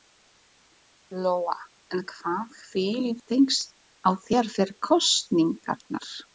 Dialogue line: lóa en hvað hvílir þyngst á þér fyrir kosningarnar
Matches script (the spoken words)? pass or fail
pass